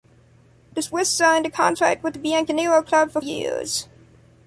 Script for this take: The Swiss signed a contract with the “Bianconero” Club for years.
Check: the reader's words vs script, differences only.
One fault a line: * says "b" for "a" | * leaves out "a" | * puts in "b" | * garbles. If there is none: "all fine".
all fine